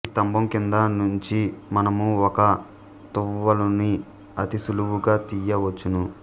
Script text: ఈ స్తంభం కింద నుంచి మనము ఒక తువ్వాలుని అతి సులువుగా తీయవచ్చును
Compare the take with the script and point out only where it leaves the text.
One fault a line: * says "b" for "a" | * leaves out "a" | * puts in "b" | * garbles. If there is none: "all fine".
all fine